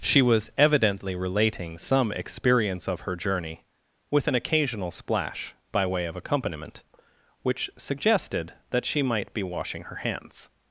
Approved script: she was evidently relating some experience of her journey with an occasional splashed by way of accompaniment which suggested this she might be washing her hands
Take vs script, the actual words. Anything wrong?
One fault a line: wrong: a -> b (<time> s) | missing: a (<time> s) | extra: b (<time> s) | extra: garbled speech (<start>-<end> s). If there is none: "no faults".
wrong: splashed -> splash (4.9 s)
wrong: this -> that (8.7 s)